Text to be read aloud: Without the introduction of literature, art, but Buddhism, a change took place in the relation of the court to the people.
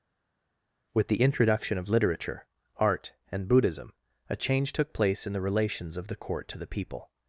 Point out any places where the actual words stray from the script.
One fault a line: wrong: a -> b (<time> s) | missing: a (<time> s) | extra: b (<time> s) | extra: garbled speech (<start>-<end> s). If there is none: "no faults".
wrong: Without -> With (0.9 s)
wrong: but -> and (3.3 s)
wrong: relation -> relations (5.4 s)